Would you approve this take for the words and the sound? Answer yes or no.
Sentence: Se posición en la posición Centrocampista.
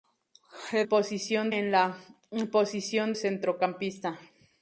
yes